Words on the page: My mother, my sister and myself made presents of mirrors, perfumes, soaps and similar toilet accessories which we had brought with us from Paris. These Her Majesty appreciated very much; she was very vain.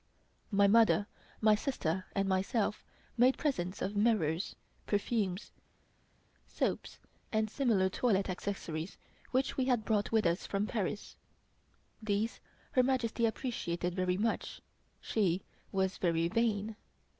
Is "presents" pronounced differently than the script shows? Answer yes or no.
no